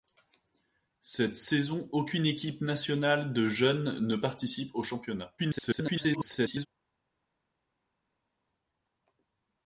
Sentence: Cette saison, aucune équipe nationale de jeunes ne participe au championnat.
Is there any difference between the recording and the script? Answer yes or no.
yes